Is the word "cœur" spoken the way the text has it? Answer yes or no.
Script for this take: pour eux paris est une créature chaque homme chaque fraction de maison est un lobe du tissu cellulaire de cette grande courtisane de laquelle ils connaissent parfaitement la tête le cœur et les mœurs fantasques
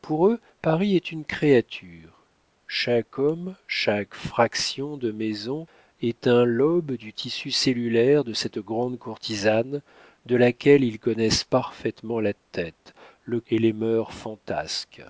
no